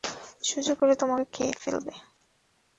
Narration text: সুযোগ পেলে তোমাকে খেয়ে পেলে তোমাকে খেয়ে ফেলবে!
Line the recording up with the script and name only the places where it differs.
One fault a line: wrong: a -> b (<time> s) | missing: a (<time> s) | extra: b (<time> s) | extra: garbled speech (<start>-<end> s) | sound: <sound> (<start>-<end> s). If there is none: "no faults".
missing: পেলে তোমাকে খেয়ে (1.5 s)